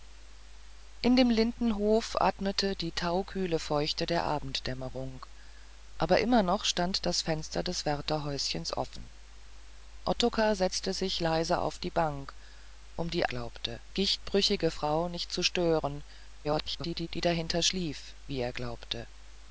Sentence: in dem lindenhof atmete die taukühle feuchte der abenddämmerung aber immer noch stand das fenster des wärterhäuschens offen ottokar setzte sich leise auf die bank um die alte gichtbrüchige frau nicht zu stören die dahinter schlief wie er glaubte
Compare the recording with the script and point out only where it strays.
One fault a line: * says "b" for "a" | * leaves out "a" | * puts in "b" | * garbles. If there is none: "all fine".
* says "glaubte" for "alte"
* garbles